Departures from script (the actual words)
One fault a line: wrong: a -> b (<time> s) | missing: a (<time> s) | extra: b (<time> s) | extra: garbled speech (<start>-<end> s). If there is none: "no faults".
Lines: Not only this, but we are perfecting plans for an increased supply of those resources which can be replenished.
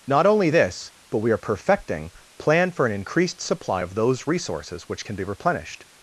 wrong: plans -> plan (2.4 s)